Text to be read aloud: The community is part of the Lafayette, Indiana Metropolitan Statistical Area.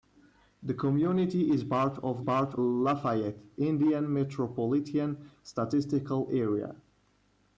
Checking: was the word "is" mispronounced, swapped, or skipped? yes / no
no